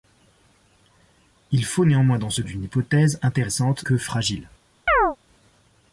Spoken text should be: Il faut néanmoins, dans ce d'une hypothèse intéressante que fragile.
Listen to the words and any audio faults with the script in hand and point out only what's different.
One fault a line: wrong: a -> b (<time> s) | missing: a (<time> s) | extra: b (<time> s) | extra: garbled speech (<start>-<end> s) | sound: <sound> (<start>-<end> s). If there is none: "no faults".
sound: chirp (4.9-5.2 s)